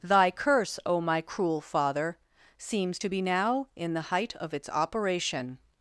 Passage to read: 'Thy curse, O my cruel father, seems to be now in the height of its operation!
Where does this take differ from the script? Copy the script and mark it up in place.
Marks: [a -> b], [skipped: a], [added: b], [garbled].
'Thy curse, O my cruel father, seems to be now in the height of its operation!